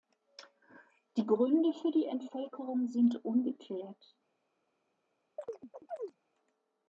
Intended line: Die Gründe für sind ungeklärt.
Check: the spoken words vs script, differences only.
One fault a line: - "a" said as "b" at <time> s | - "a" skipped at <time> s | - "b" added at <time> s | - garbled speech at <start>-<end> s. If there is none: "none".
- "die Entvölkerung" added at 1.9 s